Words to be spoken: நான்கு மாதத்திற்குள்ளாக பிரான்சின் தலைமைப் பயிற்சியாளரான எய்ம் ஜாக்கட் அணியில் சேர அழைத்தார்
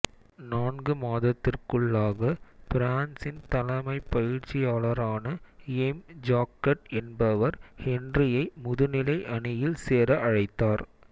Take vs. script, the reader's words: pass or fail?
fail